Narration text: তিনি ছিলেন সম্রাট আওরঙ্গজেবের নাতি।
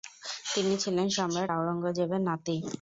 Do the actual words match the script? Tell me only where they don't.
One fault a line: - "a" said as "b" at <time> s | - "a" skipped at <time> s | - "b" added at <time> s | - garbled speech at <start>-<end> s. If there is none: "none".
none